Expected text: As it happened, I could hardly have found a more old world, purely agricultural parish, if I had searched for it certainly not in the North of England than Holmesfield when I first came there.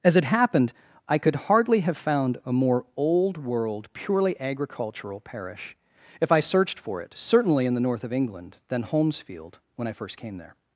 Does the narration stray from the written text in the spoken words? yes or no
yes